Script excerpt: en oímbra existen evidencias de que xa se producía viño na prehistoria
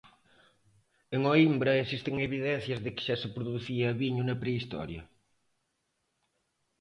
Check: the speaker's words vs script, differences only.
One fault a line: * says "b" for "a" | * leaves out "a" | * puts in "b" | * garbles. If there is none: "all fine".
all fine